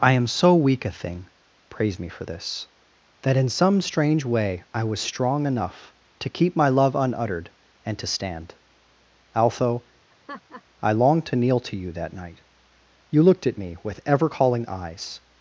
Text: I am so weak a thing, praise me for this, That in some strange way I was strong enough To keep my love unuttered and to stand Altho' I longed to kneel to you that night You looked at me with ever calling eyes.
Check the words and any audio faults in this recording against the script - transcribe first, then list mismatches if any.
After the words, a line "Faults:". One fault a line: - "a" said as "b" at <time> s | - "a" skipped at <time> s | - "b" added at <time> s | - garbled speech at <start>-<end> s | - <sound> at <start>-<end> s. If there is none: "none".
I am so weak a thing, praise me for this, That in some strange way I was strong enough To keep my love unuttered and to stand Altho' I longed to kneel to you that night You looked at me with ever calling eyes.
Faults:
- laugh at 10.1-10.6 s